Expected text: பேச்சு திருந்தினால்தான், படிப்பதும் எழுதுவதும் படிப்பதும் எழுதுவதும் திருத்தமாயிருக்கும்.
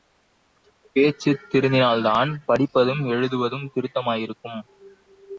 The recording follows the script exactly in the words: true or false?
false